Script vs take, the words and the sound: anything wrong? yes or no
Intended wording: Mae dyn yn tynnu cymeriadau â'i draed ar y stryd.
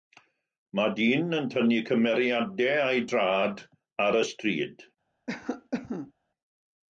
yes